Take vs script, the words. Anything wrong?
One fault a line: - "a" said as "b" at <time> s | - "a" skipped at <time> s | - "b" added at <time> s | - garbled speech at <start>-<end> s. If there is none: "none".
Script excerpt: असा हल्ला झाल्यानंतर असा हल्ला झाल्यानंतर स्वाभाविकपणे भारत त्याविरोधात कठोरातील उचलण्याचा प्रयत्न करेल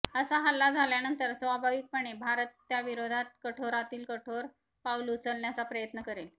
- "असा हल्ला झाल्यानंतर" skipped at 1.3 s
- "कठोर पाऊल" added at 4.1 s